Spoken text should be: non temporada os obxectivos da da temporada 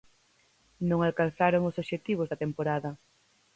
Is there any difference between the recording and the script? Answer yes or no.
yes